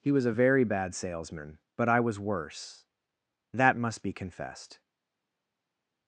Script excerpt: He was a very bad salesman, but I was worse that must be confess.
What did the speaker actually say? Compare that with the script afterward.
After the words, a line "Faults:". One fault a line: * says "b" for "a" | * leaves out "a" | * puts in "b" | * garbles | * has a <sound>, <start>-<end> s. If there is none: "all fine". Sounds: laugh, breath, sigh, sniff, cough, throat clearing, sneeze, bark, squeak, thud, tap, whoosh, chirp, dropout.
He was a very bad salesman, but I was worse that must be confessed.
Faults:
* says "confessed" for "confess"